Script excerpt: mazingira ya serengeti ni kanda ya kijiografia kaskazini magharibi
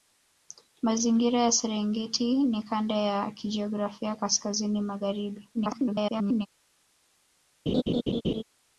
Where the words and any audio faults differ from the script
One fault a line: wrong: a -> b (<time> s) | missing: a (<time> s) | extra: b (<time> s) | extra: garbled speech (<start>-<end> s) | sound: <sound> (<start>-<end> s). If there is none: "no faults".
extra: garbled speech (5.5-6.5 s)
sound: laugh (7.7-8.4 s)